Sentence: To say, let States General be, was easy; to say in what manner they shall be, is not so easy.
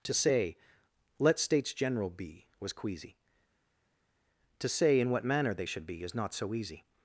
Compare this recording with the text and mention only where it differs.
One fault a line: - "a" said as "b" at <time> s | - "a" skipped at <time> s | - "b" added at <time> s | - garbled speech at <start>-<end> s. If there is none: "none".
- "easy" said as "queasy" at 2.7 s
- "shall" said as "should" at 5.6 s